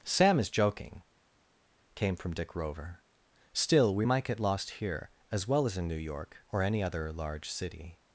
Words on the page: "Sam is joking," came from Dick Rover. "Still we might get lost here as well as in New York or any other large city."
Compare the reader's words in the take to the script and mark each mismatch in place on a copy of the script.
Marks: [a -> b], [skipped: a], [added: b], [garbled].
"Sam is joking," came from Dick Rover. "Still we might get lost here as well as in New York or any other large city."